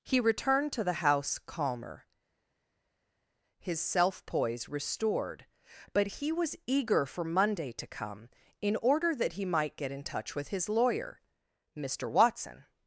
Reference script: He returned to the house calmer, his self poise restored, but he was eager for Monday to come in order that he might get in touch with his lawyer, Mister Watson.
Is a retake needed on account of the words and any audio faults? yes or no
no